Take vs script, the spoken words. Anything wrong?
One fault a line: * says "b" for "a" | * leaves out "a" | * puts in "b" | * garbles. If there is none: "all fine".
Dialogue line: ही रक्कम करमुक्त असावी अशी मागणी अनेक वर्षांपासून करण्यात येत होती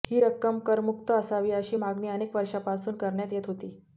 all fine